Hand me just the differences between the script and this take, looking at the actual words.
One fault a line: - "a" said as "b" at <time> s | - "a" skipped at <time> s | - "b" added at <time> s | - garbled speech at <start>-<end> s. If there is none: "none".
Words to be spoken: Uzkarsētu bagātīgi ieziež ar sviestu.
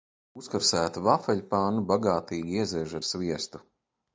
- "vafeļpannu" added at 1.1 s